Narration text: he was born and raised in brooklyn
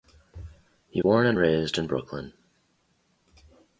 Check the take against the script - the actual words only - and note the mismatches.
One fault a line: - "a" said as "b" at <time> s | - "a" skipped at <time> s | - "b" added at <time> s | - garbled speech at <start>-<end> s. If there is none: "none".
- "was" skipped at 1.0 s